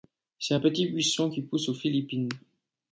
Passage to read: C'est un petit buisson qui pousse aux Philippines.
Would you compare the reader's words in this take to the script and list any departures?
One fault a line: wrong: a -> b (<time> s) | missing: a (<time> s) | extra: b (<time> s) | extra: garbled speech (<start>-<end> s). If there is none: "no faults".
no faults